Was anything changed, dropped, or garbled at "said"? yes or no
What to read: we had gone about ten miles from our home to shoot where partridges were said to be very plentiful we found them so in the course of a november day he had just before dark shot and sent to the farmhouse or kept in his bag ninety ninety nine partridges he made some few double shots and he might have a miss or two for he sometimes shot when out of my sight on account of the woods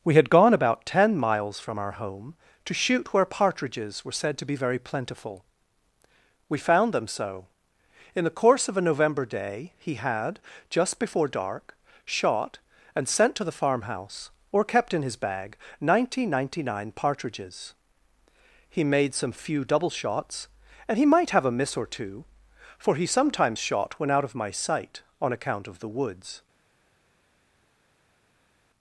no